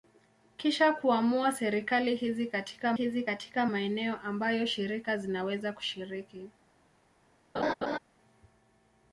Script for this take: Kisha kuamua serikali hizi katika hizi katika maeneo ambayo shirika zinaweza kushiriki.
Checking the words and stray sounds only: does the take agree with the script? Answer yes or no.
no